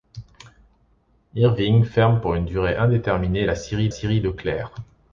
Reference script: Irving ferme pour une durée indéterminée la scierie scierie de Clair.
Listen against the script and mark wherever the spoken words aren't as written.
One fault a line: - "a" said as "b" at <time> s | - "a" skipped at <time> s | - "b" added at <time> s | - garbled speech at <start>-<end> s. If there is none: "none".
none